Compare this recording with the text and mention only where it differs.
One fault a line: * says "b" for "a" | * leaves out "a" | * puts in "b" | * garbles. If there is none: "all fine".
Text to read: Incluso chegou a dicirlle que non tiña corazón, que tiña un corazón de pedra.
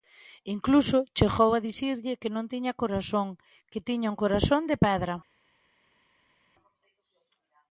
all fine